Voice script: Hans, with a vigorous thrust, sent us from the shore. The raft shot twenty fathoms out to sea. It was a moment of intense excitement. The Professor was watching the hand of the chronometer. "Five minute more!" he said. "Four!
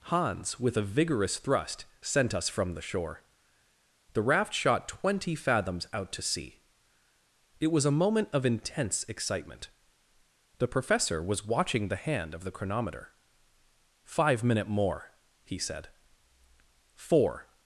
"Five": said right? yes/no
yes